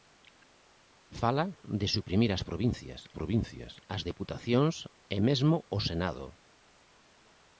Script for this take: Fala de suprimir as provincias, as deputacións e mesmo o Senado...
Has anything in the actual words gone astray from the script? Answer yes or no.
yes